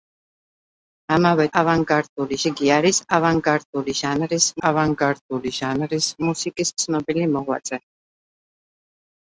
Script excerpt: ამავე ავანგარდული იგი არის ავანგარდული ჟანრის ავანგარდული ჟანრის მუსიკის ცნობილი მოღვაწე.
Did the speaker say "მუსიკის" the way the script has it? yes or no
yes